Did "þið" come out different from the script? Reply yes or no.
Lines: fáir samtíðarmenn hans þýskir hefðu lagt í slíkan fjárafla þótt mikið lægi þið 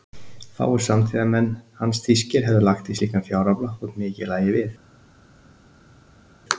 yes